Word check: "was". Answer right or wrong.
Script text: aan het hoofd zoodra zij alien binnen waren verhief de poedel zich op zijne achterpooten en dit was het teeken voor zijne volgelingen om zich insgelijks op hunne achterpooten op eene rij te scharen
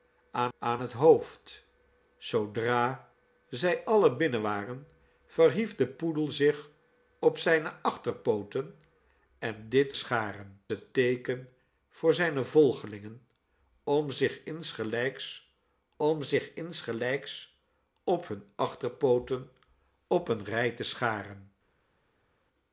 wrong